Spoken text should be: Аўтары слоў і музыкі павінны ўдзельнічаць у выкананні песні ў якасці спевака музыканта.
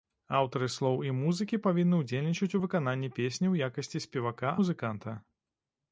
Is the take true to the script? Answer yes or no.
yes